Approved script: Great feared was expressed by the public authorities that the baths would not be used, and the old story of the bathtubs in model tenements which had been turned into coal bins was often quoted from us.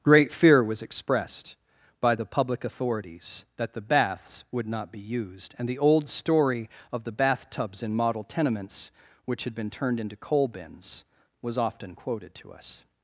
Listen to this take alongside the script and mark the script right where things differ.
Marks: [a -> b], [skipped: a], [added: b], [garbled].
Great [feared -> fear] was expressed by the public authorities that the baths would not be used, and the old story of the bathtubs in model tenements which had been turned into coal bins was often quoted [from -> to] us.